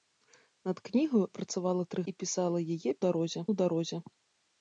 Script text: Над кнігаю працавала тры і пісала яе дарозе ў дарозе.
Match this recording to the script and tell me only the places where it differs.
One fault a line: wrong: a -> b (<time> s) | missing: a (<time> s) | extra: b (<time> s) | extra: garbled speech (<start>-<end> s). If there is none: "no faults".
no faults